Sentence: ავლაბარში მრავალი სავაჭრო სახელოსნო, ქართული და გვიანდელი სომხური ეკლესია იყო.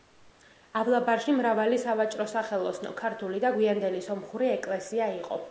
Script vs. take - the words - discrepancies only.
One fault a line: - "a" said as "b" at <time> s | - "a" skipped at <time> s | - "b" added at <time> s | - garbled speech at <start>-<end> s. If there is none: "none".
none